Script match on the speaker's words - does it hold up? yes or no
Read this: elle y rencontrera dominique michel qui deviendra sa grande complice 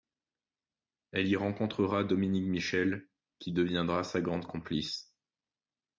yes